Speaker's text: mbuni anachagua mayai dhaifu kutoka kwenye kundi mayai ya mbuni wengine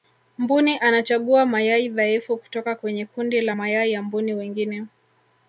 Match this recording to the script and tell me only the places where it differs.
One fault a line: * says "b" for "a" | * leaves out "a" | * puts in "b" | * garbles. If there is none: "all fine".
* puts in "la"